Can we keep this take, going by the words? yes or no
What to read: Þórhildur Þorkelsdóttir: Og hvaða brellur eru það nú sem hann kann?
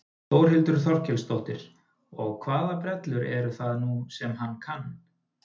yes